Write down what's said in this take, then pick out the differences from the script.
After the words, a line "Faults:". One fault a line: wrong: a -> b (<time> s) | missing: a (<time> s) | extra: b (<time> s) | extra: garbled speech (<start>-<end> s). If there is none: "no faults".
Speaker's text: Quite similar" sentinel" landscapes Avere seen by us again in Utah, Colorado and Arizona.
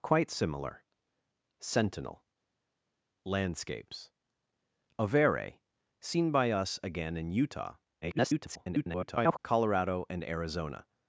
Quite similar" sentinel" landscapes Avere seen by us again in Utah, [garbled] Colorado and Arizona.
Faults:
extra: garbled speech (8.0-9.4 s)